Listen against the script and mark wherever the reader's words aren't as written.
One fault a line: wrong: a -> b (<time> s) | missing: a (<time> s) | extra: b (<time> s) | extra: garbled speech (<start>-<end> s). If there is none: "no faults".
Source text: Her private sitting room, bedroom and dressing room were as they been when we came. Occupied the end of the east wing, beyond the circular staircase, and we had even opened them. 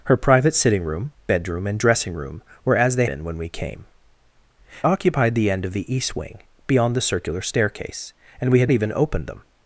no faults